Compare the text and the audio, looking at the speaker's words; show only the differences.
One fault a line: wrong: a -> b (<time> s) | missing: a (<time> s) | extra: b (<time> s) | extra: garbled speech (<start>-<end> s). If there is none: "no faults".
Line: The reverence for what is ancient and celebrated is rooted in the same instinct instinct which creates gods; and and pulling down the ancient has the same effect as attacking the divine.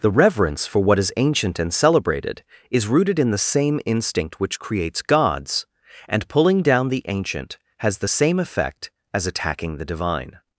missing: instinct (4.4 s)
missing: and (6.3 s)